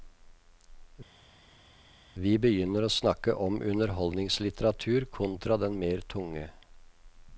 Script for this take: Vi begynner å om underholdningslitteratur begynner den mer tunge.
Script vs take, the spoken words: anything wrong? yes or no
yes